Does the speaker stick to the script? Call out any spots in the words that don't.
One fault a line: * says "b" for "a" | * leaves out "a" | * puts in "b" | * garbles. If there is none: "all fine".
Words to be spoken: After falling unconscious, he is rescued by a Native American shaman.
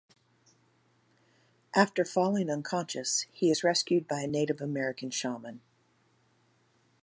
all fine